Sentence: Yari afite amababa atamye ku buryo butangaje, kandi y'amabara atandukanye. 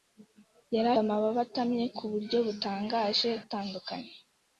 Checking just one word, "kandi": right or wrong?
wrong